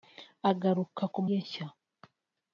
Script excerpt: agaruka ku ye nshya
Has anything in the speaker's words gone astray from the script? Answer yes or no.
no